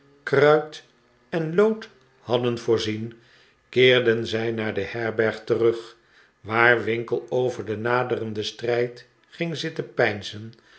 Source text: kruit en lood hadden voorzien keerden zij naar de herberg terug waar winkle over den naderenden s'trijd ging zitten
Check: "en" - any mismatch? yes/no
no